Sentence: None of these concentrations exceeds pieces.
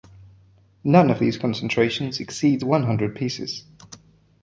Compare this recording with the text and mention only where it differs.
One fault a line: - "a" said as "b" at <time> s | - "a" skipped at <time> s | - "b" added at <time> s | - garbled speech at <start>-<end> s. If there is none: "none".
- "one hundred" added at 2.6 s